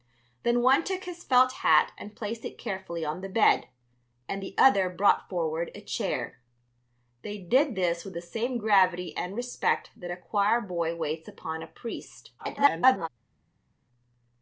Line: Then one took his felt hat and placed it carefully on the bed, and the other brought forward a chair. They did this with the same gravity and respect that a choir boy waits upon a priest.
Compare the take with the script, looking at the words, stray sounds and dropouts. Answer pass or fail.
fail